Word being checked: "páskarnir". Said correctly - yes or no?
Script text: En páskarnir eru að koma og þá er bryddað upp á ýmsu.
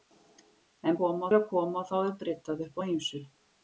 no